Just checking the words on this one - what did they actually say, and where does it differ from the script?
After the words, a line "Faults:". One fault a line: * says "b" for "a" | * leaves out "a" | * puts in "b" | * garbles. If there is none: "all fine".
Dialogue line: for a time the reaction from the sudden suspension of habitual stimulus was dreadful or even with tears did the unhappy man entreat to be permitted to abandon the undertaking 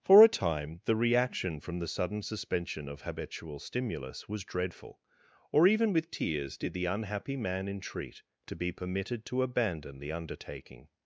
for a time the reaction from the sudden suspension of habitual stimulus was dreadful or even with tears did the unhappy man entreat to be permitted to abandon the undertaking
Faults:
all fine